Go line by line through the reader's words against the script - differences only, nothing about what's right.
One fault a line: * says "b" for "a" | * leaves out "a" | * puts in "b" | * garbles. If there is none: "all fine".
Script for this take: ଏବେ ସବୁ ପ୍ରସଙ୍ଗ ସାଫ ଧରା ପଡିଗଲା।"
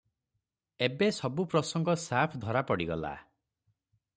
all fine